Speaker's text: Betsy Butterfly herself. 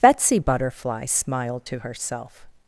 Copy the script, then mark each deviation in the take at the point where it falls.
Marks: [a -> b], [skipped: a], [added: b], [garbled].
Betsy Butterfly [added: smiled to] herself.